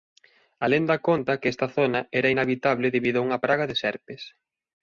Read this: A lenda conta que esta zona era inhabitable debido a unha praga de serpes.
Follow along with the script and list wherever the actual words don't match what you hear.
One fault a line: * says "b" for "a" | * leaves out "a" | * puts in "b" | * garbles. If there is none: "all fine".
all fine